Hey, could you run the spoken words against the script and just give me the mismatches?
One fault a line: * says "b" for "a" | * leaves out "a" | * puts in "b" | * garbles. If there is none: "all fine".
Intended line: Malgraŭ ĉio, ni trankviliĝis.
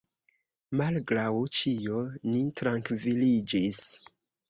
all fine